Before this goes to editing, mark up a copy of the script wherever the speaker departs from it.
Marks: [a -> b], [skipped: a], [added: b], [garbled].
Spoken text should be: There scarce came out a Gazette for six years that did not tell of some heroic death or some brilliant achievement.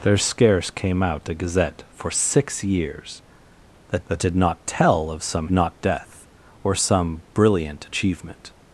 There scarce came out a Gazette for six years that [added: that] did not tell of some [heroic -> not] death or some brilliant achievement.